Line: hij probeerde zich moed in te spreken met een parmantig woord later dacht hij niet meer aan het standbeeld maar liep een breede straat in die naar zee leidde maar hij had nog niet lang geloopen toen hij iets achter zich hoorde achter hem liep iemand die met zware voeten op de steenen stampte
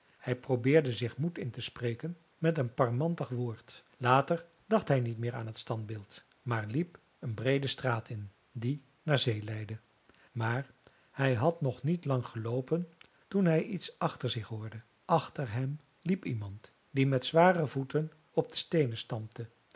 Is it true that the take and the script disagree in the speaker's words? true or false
false